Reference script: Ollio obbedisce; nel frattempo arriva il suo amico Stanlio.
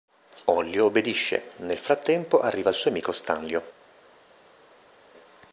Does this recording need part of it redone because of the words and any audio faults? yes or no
no